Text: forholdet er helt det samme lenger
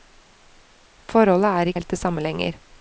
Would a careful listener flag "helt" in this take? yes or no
no